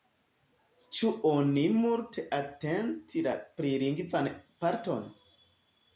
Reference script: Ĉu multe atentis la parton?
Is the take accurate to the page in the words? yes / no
no